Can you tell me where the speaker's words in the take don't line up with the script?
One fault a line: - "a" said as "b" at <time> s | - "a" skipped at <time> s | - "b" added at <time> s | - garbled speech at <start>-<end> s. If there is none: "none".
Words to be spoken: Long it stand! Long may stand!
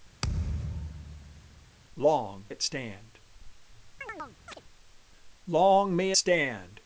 none